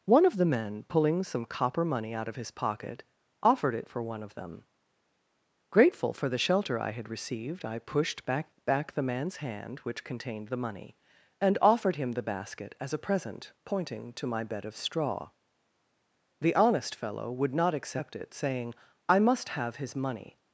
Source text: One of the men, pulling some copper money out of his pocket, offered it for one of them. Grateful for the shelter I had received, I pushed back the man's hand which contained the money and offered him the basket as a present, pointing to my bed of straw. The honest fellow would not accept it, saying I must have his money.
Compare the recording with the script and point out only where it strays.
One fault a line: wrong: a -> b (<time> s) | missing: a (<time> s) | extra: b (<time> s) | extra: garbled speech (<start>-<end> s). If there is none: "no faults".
extra: back (8.7 s)